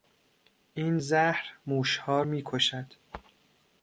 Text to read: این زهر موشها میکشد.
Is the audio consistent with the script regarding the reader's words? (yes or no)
yes